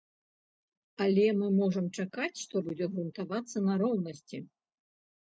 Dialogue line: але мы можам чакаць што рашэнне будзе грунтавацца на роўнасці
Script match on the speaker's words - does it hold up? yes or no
no